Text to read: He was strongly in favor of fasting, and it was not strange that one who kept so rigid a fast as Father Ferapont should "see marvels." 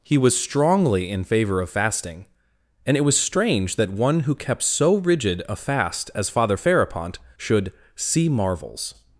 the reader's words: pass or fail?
fail